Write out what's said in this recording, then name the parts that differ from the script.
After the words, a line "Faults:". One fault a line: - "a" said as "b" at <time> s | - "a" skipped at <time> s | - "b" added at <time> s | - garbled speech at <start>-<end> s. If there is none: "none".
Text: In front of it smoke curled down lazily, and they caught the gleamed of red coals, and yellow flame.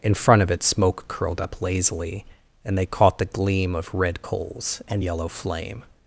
In front of it smoke curled up lazily, and they caught the gleam of red coals, and yellow flame.
Faults:
- "down" said as "up" at 1.4 s
- "gleamed" said as "gleam" at 3.2 s